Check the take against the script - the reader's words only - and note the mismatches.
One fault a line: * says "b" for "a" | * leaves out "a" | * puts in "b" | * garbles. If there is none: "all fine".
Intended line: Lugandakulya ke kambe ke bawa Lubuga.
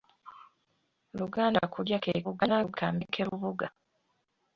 * garbles
* leaves out "bawa"